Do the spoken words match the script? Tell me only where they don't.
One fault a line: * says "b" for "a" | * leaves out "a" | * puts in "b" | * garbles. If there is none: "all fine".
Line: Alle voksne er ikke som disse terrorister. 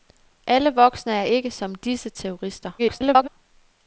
* garbles